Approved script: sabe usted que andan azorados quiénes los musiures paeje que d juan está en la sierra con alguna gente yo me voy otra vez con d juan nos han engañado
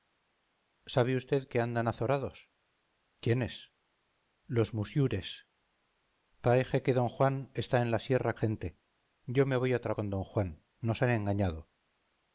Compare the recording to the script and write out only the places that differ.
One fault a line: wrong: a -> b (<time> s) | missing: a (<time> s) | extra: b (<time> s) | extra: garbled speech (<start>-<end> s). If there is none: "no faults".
missing: con alguna (8.3 s)
missing: vez (9.9 s)